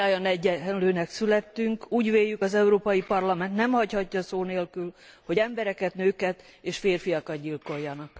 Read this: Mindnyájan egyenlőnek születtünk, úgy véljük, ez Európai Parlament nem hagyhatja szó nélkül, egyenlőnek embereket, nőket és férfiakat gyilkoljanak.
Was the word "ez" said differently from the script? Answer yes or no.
yes